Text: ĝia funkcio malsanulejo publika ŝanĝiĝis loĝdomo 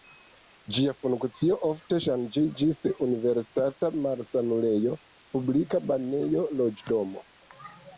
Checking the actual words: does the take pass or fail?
fail